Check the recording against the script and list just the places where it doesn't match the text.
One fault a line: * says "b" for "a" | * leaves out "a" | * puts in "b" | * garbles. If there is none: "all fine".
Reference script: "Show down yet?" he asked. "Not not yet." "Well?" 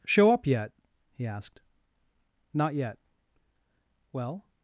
* says "up" for "down"
* leaves out "not"